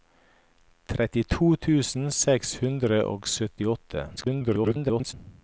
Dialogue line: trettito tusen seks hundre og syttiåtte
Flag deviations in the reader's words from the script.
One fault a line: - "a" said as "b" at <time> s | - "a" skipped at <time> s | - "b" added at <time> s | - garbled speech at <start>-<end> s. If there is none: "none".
- garbled speech at 4.2-5.1 s